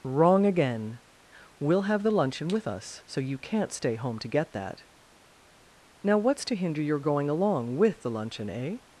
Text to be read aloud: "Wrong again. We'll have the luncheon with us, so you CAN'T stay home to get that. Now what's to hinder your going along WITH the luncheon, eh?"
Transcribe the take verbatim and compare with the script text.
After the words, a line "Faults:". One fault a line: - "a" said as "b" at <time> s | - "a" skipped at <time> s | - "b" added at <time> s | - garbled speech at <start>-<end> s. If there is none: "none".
"Wrong again. We'll have the luncheon with us, so you CAN'T stay home to get that. Now what's to hinder your going along WITH the luncheon, eh?"
Faults:
none